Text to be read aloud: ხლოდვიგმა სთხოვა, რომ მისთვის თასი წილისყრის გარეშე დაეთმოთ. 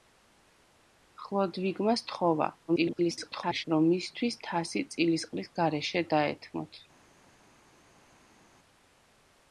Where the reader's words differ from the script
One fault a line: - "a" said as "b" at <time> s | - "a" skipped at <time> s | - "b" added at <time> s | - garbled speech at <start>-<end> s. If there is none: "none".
- garbled speech at 2.7-3.7 s